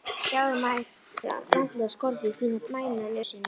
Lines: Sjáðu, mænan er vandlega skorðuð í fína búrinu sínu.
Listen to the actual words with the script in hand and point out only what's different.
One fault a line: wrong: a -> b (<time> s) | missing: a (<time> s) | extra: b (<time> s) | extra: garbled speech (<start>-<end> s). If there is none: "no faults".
missing: mænan (0.6 s)
wrong: búrinu -> mænan (2.7 s)